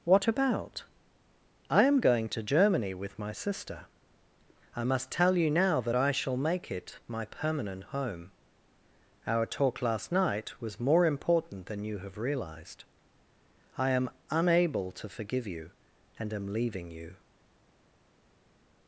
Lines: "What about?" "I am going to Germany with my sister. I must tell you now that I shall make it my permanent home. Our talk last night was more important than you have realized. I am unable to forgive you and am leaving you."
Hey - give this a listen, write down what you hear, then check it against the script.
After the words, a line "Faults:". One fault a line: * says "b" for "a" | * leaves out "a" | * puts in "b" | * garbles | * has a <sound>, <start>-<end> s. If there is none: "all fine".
"What about?" "I am going to Germany with my sister. I must tell you now that I shall make it my permanent home. Our talk last night was more important than you have realized. I am unable to forgive you and am leaving you."
Faults:
all fine